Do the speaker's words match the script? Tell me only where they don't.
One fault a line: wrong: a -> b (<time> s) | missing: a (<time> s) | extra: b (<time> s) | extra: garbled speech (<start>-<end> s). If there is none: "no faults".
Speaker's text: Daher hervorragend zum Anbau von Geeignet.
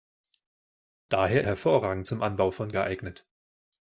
no faults